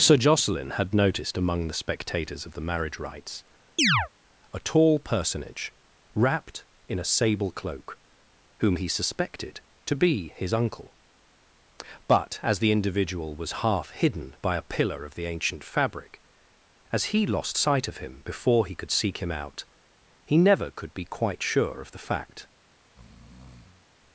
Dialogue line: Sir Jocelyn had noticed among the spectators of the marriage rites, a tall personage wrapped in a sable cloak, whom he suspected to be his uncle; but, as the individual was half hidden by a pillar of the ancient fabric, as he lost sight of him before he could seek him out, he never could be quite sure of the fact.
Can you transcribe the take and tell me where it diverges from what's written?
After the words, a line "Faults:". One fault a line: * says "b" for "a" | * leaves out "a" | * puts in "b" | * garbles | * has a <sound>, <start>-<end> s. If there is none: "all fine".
Sir Jocelyn had noticed among the spectators of the marriage rites, a tall personage wrapped in a sable cloak, whom he suspected to be his uncle; but, as the individual was half hidden by a pillar of the ancient fabric, as he lost sight of him before he could seek him out, he never could be quite sure of the fact.
Faults:
* has a chirp, 3.8-4.1 s
* has a breath, 22.8-23.9 s